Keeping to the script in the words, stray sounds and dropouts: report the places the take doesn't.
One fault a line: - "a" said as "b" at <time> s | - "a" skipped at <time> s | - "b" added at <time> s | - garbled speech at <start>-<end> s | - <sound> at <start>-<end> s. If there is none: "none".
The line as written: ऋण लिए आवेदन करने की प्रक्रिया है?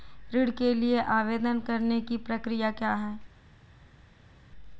- "के" added at 0.5 s
- "क्या" added at 2.7 s